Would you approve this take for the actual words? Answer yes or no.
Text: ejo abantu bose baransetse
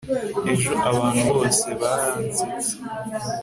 yes